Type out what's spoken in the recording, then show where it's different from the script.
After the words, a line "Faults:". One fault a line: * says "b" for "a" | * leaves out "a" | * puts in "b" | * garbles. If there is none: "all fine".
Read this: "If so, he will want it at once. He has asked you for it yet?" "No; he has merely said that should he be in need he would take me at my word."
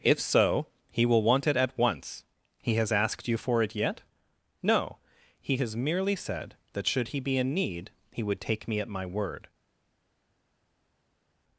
"If so, he will want it at once. He has asked you for it yet?" "No; he has merely said that should he be in need he would take me at my word."
Faults:
all fine